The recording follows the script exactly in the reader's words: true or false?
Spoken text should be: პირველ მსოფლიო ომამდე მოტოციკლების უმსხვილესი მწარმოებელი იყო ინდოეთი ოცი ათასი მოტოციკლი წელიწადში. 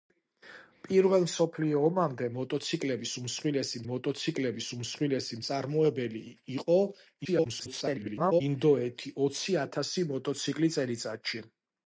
false